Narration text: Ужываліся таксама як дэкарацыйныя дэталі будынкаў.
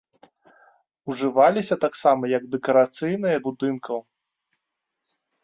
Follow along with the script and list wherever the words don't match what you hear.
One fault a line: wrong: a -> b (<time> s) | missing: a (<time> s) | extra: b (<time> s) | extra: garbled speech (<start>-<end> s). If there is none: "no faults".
missing: дэталі (3.4 s)